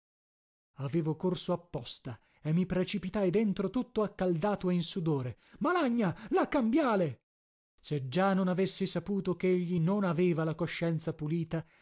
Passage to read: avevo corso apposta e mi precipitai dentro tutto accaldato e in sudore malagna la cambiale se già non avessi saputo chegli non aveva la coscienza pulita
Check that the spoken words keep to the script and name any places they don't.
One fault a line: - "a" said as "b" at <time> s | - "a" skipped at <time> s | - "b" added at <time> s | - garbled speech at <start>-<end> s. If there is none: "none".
none